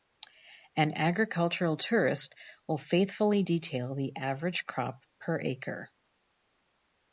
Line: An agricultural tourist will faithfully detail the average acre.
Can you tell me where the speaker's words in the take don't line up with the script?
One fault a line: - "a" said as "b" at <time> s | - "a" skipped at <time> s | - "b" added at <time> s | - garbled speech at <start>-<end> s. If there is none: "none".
- "crop per" added at 4.6 s